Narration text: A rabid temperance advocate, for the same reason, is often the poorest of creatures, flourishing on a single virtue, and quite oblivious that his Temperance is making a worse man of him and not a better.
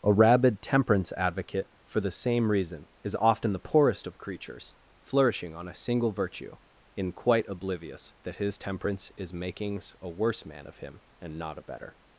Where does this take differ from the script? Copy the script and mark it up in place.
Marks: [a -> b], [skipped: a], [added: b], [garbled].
A rabid temperance advocate, for the same reason, is often the poorest of creatures, flourishing on a single virtue, [and -> in] quite oblivious that his Temperance is [making -> makings] a worse man of him and not a better.